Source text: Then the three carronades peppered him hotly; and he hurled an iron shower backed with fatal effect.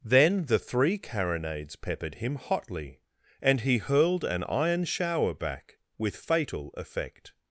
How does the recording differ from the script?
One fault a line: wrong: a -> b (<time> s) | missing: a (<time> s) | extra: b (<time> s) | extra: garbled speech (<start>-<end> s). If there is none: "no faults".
wrong: backed -> back (5.3 s)